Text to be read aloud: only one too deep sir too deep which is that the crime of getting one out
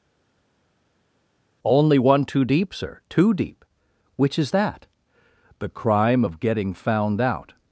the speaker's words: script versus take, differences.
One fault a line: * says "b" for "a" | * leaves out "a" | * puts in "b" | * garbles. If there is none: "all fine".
* says "found" for "one"